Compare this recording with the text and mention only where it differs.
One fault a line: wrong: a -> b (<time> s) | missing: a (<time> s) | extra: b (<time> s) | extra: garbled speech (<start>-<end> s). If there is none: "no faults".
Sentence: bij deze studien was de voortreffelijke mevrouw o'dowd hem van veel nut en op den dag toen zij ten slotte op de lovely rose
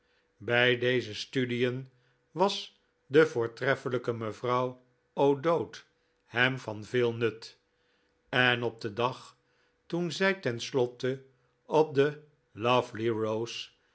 no faults